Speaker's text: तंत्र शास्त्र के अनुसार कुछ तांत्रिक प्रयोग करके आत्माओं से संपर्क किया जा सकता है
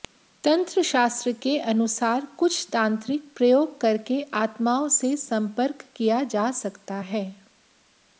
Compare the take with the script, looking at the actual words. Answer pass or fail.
pass